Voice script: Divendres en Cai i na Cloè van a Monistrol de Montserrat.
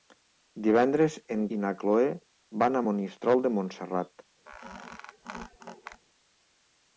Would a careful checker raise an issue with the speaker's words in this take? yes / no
yes